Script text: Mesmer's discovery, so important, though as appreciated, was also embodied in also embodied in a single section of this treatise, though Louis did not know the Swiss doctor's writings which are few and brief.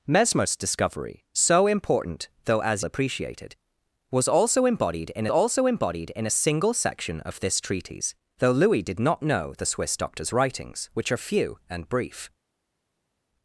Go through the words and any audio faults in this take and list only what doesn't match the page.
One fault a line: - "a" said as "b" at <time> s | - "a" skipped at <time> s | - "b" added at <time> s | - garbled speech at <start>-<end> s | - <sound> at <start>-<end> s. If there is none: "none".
none